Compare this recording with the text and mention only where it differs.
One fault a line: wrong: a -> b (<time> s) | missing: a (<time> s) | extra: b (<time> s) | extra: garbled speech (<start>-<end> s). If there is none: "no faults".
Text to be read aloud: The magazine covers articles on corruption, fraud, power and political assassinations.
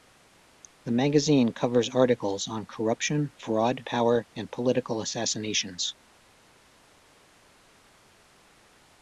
no faults